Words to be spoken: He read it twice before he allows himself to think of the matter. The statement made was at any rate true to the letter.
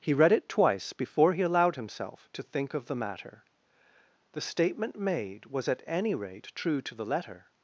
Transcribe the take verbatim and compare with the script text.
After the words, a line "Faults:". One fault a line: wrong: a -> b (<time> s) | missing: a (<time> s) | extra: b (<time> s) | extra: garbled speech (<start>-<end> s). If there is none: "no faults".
He read it twice before he allowed himself to think of the matter. The statement made was at any rate true to the letter.
Faults:
wrong: allows -> allowed (1.4 s)